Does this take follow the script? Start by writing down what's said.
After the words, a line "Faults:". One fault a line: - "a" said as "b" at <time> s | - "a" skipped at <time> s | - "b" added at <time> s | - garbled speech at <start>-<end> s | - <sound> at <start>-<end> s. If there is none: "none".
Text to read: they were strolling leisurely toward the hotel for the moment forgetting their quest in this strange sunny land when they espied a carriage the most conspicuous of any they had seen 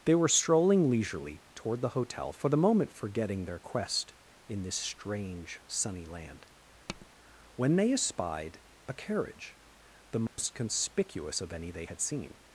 they were strolling leisurely toward the hotel for the moment forgetting their quest in this strange sunny land when they espied a carriage the most conspicuous of any they had seen
Faults:
- tap at 6.9-7.1 s
- dropout at 10.3-10.4 s